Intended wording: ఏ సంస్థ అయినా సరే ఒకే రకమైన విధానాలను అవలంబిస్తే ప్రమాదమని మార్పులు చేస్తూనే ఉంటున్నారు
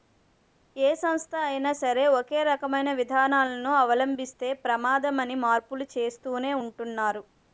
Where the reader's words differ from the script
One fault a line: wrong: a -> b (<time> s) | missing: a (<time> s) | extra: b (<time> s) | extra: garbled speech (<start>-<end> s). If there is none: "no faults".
no faults